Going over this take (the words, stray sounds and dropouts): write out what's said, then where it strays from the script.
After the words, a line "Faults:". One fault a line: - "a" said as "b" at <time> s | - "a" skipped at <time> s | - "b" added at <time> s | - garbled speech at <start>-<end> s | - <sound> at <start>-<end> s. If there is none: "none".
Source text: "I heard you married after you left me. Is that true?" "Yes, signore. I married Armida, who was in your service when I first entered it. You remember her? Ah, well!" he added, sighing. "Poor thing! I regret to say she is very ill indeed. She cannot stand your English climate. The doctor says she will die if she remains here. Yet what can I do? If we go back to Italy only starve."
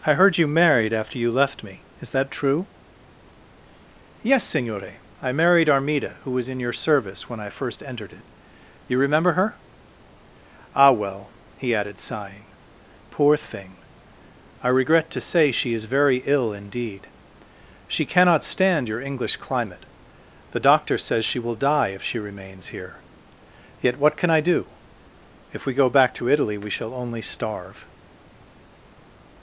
"I heard you married after you left me. Is that true?" "Yes, signore. I married Armida, who was in your service when I first entered it. You remember her? Ah, well!" he added, sighing. "Poor thing! I regret to say she is very ill indeed. She cannot stand your English climate. The doctor says she will die if she remains here. Yet what can I do? If we go back to Italy we shall only starve."
Faults:
- "we shall" added at 26.6 s